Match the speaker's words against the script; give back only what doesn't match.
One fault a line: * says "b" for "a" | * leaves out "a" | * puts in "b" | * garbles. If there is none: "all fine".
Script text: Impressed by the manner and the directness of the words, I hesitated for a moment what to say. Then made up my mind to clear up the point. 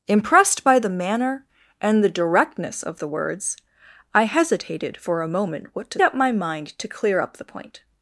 * leaves out "say Then made"